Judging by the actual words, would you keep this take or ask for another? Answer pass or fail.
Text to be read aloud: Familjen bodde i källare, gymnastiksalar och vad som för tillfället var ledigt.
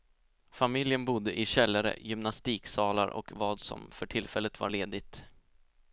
pass